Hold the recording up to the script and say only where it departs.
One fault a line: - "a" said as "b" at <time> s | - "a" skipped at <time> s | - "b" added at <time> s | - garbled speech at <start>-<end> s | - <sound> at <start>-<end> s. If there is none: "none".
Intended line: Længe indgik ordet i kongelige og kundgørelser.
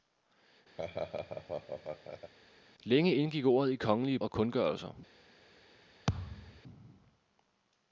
- laugh at 0.8-2.3 s
- thud at 6.1-6.6 s